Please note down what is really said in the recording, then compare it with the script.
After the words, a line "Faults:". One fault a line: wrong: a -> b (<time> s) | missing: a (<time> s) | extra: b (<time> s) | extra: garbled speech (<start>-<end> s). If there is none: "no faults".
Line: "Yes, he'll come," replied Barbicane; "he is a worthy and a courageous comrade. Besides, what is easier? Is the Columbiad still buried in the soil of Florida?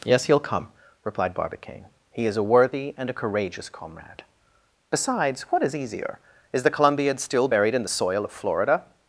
"Yes, he'll come," replied Barbicane; "he is a worthy and a courageous comrade. Besides, what is easier? Is the Columbiad still buried in the soil of Florida?
Faults:
no faults